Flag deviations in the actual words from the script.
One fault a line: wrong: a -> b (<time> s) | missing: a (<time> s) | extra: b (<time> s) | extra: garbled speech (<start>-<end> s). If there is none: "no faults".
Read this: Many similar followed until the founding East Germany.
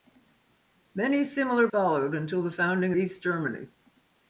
no faults